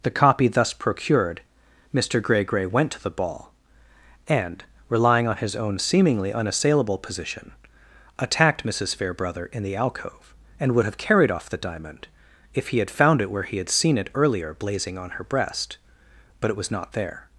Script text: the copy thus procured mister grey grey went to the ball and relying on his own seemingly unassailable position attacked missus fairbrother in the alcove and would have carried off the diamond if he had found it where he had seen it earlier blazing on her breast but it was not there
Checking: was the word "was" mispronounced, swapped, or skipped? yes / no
no